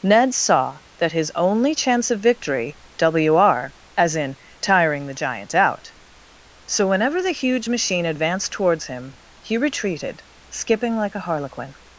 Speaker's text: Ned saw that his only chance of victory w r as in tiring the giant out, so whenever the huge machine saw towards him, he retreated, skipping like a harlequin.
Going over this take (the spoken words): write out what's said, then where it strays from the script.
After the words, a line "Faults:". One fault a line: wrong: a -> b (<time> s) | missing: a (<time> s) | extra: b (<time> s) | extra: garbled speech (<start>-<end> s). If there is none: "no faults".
Ned saw that his only chance of victory w r as in tiring the giant out, so whenever the huge machine advanced towards him, he retreated, skipping like a harlequin.
Faults:
wrong: saw -> advanced (8.1 s)